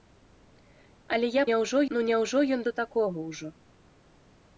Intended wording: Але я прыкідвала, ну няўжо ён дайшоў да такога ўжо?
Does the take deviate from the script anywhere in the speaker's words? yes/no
yes